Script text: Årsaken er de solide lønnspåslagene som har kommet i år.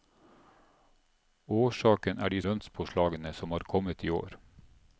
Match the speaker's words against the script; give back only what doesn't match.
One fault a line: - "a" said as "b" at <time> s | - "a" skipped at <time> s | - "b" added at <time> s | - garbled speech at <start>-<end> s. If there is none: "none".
- "solide" skipped at 2.4 s